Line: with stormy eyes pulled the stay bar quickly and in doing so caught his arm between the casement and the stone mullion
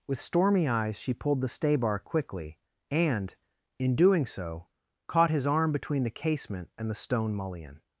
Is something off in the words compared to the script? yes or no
yes